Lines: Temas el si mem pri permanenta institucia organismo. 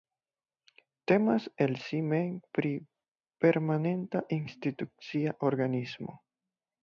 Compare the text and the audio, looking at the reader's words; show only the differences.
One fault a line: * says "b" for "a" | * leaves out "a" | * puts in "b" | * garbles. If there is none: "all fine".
all fine